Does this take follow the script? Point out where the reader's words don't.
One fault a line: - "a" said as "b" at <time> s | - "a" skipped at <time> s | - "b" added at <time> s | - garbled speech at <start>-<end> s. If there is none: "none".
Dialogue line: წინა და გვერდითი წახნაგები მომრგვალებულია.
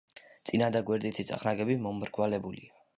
none